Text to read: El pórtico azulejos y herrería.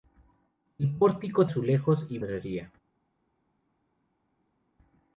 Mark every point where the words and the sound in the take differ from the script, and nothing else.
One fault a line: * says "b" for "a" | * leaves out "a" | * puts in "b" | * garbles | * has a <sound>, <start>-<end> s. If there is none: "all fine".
all fine